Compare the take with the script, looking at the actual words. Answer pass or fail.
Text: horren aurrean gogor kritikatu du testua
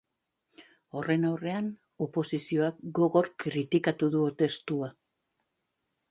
fail